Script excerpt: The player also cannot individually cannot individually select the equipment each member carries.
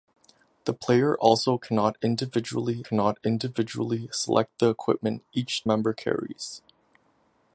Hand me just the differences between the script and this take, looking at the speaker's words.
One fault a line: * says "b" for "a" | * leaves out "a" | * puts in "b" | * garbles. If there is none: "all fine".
all fine